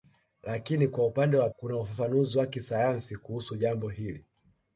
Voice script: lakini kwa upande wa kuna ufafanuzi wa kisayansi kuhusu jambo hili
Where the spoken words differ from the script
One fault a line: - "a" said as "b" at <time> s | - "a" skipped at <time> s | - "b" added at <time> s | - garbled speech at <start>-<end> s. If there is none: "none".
none